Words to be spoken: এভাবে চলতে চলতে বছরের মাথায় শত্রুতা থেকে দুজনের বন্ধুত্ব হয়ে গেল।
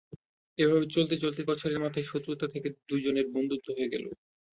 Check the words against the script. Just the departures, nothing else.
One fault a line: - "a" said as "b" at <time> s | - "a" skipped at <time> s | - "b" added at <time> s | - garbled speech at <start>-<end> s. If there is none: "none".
none